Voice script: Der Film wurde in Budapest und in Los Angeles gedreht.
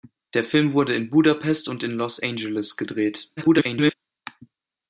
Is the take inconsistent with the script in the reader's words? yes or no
yes